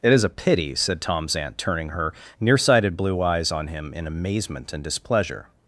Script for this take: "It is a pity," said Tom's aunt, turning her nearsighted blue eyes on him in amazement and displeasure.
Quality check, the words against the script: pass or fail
pass